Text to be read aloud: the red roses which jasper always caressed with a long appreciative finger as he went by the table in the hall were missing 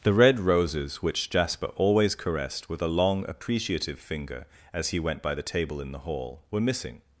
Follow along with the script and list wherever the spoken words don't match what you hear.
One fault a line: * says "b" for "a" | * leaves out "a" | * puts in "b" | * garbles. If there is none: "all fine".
all fine